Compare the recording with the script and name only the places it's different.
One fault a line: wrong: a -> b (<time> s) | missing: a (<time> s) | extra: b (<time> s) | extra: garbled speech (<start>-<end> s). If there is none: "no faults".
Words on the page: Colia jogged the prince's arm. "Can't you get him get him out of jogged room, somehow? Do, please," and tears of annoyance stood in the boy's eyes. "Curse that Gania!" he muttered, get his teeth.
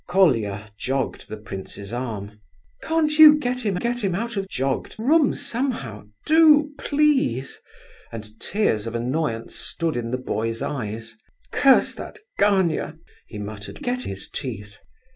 no faults